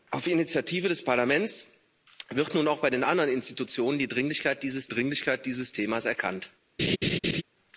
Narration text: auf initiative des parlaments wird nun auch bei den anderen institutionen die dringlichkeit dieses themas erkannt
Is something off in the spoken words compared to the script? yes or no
yes